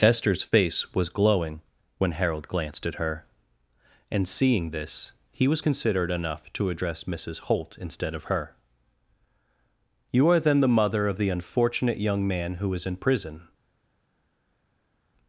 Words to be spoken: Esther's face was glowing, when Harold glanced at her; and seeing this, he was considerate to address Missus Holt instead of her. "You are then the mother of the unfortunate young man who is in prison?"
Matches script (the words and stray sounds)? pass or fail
fail